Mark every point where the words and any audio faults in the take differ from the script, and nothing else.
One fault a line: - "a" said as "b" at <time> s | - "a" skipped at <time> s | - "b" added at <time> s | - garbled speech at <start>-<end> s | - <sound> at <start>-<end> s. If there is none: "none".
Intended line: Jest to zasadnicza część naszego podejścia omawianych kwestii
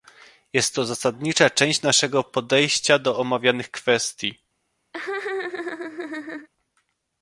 - "do" added at 3.0 s
- laugh at 4.9-6.5 s